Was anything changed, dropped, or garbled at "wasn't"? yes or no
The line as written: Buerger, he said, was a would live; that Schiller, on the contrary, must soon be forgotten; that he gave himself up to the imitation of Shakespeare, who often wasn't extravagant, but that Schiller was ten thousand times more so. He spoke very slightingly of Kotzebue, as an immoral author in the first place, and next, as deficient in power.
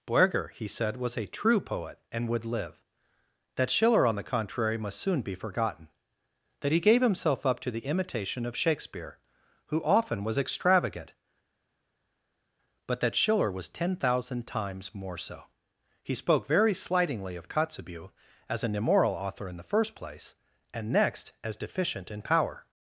yes